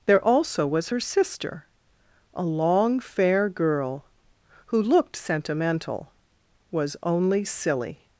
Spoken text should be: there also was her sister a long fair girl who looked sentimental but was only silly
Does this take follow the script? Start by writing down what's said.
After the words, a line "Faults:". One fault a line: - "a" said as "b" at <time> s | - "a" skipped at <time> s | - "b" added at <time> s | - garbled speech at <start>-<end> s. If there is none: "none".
there also was her sister a long fair girl who looked sentimental was only silly
Faults:
- "but" skipped at 6.1 s